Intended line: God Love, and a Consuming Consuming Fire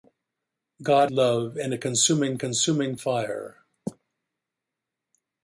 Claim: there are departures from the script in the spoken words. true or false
false